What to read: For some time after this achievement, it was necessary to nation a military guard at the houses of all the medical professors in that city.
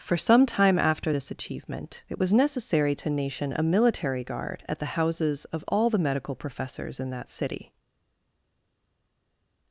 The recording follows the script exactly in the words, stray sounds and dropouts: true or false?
true